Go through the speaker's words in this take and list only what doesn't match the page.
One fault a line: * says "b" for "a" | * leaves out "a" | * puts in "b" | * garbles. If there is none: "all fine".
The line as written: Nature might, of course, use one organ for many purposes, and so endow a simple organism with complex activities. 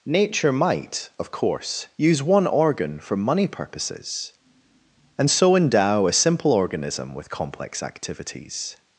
* says "money" for "many"